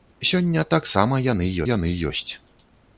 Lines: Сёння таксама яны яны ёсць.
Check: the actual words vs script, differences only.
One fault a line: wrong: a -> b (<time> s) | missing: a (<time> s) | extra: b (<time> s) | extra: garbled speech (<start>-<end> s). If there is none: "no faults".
no faults